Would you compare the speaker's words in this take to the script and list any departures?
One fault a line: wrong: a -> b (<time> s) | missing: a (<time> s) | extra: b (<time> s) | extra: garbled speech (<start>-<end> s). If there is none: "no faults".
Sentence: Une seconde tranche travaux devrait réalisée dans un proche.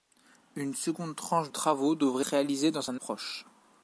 no faults